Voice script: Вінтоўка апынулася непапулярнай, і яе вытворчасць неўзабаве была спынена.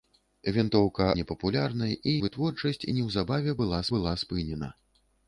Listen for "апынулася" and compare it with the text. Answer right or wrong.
wrong